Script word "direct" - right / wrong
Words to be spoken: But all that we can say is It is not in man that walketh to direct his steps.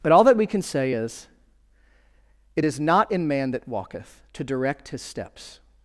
right